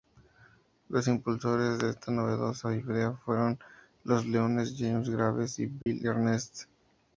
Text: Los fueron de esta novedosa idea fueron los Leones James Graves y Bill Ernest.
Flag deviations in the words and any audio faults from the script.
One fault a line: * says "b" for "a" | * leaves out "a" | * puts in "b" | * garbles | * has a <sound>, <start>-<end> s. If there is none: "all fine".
* says "impulsores" for "fueron"
* has a dropout, 5.8-5.9 s